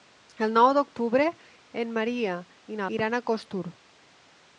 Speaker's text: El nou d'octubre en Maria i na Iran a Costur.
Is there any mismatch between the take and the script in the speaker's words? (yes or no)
no